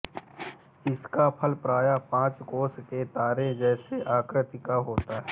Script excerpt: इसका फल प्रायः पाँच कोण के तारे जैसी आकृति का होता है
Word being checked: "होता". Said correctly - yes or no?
yes